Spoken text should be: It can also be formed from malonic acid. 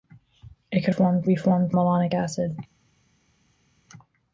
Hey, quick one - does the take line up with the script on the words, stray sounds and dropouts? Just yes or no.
no